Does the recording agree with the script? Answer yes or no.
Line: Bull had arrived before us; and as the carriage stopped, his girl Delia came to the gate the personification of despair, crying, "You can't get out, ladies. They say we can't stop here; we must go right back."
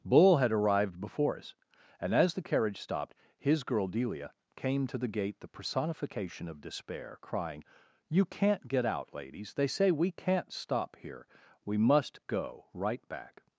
yes